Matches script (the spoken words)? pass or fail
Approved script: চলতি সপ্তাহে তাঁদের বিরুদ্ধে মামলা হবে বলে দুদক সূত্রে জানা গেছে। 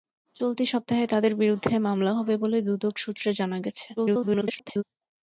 fail